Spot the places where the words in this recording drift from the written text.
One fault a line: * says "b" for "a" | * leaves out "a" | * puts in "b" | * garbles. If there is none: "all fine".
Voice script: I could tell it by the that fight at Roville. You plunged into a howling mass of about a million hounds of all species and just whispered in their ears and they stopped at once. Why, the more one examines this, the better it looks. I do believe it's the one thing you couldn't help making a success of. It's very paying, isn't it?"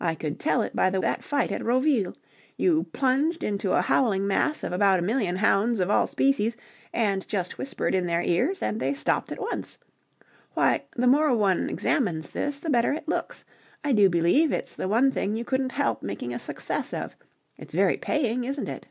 all fine